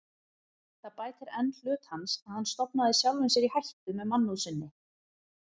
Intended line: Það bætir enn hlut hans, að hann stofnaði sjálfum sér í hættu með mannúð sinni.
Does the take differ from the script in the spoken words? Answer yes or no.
no